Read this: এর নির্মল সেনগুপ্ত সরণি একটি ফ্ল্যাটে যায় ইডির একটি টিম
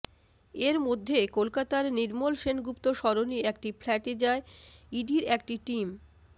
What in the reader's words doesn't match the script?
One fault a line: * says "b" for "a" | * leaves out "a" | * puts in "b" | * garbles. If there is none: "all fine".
* puts in "মধ্যে কলকাতার"